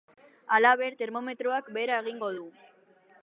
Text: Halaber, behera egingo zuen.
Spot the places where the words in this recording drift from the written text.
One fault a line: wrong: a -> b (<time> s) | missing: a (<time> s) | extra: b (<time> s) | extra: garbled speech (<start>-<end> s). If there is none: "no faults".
extra: termometroak (1.0 s)
wrong: zuen -> du (2.3 s)